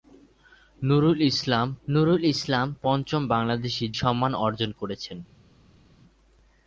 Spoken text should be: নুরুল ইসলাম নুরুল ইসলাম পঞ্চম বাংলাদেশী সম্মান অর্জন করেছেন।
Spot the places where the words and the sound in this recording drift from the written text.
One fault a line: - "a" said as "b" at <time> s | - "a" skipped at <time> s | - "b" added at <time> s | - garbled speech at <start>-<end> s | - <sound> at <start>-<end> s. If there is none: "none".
none